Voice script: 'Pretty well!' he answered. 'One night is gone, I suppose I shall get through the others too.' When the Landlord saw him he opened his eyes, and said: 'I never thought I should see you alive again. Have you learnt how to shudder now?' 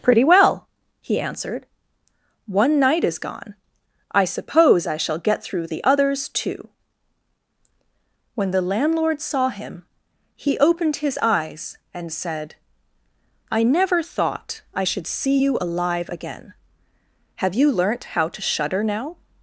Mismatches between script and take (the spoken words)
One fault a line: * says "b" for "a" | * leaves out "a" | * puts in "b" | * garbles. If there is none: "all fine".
all fine